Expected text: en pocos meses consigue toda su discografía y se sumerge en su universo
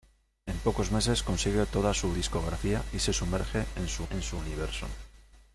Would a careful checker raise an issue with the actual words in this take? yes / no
yes